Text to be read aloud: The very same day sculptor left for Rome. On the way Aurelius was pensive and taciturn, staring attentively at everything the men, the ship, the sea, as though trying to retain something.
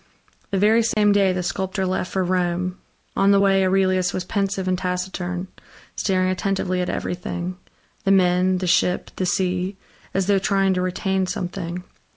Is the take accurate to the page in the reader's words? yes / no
no